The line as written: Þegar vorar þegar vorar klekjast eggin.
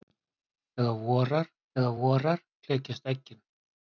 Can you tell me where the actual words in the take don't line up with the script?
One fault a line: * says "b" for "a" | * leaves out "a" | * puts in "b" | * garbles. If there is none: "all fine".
all fine